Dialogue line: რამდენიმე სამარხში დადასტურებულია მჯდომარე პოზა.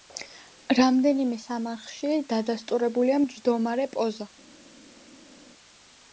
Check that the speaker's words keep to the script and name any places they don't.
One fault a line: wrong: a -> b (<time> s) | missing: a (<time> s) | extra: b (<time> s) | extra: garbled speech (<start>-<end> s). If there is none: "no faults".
no faults